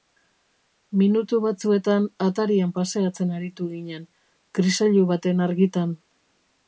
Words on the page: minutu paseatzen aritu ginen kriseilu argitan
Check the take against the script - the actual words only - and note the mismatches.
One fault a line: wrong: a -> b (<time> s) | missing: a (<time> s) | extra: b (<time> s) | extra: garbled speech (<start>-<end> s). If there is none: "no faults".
extra: batzuetan atarian (1.4 s)
extra: baten (5.1 s)